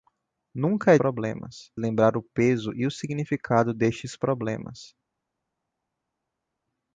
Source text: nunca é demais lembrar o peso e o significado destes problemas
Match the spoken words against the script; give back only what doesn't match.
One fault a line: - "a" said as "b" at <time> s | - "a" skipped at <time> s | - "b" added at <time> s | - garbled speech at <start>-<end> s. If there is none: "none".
- "demais" said as "problemas" at 0.9 s